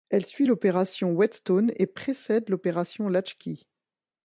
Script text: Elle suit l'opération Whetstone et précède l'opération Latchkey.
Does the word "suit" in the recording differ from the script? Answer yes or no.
no